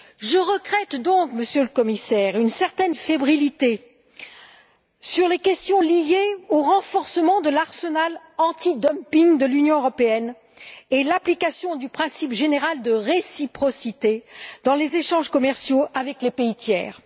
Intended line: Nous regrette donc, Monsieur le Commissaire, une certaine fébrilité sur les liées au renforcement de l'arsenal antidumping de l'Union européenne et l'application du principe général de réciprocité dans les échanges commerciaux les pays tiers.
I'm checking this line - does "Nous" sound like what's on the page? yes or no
no